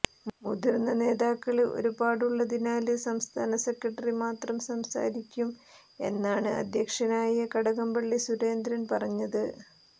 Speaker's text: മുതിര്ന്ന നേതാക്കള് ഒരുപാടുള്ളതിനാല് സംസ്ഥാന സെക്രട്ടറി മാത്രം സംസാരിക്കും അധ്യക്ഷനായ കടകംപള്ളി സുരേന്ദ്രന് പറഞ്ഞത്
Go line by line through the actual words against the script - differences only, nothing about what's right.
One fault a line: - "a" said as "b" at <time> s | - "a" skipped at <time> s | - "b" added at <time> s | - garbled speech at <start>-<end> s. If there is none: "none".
- "എന്നാണ്" added at 6.0 s